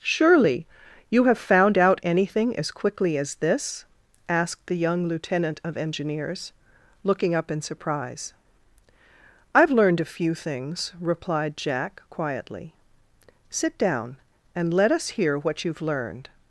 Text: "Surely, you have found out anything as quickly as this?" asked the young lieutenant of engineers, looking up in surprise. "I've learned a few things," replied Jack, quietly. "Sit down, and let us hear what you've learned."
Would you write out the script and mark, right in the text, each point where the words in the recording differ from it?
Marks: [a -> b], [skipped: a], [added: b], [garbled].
"Surely, you have found out anything as quickly as this?" asked the young lieutenant of engineers, looking up in surprise. "I've learned a few things," replied Jack, quietly. "Sit down, and let us hear what you've learned."